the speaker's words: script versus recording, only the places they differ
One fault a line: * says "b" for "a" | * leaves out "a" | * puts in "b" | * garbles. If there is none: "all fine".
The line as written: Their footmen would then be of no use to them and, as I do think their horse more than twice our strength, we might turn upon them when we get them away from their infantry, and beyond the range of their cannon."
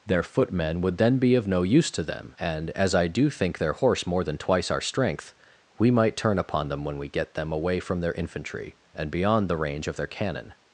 all fine